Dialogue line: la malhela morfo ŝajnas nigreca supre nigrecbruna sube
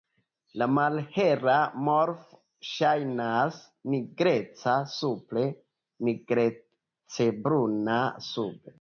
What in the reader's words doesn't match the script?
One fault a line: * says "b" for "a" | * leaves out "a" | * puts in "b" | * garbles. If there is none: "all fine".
all fine